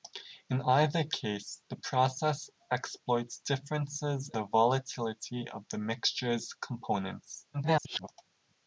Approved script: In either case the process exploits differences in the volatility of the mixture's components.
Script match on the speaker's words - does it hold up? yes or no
no